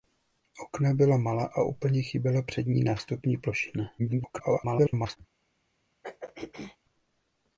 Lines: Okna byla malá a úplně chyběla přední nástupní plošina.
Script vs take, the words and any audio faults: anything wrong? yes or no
yes